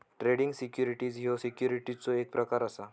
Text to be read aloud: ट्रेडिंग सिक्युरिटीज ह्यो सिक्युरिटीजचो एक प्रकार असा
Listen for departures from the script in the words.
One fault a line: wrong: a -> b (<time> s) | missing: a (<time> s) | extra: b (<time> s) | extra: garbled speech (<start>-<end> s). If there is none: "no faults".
no faults